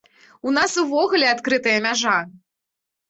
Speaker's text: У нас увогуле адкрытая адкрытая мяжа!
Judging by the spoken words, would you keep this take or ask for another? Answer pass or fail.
fail